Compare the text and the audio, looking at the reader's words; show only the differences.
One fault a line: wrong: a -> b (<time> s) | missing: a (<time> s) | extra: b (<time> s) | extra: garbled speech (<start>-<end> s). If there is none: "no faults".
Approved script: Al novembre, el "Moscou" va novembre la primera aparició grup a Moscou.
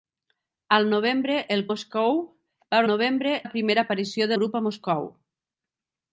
no faults